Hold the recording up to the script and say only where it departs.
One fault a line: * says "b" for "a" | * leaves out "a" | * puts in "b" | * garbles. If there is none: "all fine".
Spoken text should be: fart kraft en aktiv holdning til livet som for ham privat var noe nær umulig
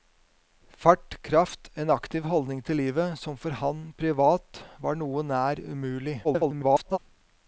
* garbles